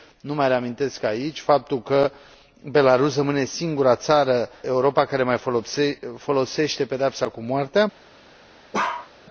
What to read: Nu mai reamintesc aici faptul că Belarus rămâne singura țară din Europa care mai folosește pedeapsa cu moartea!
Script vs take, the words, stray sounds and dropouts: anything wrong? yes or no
yes